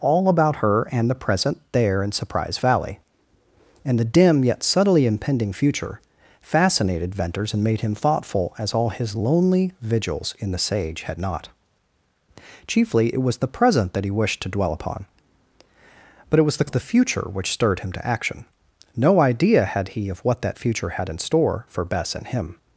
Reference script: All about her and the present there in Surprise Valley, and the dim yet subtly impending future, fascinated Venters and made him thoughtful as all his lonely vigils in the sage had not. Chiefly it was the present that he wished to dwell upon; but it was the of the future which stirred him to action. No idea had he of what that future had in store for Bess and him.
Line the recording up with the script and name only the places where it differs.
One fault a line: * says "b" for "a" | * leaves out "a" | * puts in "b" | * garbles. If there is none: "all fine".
all fine